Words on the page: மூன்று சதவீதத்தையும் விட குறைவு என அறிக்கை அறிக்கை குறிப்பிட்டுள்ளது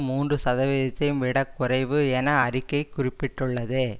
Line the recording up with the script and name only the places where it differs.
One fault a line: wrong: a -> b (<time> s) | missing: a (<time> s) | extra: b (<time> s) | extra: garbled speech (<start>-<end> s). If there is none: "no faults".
missing: அறிக்கை (2.8 s)